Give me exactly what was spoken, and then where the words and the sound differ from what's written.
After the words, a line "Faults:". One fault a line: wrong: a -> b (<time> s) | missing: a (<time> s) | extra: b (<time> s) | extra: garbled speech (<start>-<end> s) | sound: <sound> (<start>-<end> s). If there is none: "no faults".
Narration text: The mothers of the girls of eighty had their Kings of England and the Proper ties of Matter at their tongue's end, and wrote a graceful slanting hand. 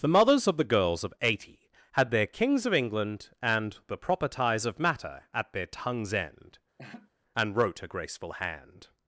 The mothers of the girls of eighty had their Kings of England and the Proper ties of Matter at their tongue's end, and wrote a graceful hand.
Faults:
sound: laugh (6.8-7.1 s)
missing: slanting (8.3 s)